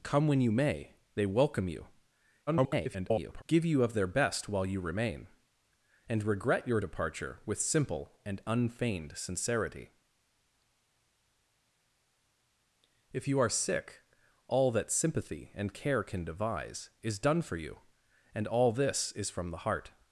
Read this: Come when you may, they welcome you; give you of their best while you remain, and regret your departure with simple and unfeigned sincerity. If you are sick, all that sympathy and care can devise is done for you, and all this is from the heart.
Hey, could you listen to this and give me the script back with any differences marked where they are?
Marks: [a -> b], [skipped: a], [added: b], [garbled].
Come when you may, they welcome you; [garbled] give you of their best while you remain, and regret your departure with simple and unfeigned sincerity. If you are sick, all that sympathy and care can devise is done for you, and all this is from the heart.